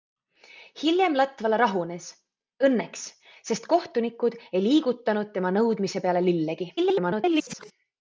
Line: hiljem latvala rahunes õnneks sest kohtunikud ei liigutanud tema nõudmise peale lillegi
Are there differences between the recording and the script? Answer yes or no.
yes